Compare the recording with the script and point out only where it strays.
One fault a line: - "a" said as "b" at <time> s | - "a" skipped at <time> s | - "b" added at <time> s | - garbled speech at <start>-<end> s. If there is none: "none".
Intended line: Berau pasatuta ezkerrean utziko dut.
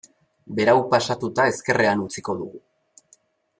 - "dut" said as "dugu" at 2.4 s